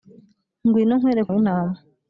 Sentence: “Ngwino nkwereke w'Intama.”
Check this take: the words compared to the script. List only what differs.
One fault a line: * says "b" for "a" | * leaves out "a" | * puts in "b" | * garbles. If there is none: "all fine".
all fine